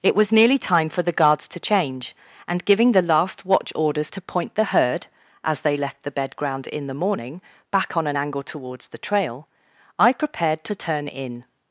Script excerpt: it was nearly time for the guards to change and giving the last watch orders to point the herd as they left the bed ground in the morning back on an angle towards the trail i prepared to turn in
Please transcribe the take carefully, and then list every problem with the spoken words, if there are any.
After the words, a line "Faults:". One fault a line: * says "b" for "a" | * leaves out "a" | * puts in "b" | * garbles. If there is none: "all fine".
it was nearly time for the guards to change and giving the last watch orders to point the herd as they left the bed ground in the morning back on an angle towards the trail i prepared to turn in
Faults:
all fine